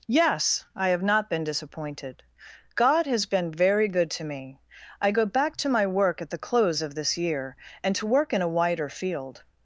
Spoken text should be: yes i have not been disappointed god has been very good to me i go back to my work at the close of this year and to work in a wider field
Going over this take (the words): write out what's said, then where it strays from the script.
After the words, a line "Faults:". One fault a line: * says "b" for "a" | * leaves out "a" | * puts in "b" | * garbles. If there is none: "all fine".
yes i have not been disappointed god has been very good to me i go back to my work at the close of this year and to work in a wider field
Faults:
all fine